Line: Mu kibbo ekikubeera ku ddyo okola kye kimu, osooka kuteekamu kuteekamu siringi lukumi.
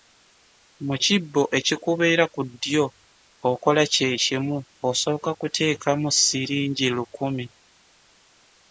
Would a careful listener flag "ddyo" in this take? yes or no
no